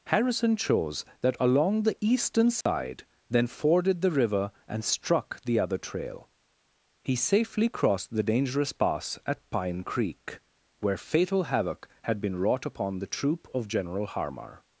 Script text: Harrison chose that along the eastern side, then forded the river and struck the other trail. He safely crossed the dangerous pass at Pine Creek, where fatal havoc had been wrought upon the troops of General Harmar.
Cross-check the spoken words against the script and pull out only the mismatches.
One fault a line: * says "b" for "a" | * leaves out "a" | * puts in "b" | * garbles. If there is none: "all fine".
* says "troop" for "troops"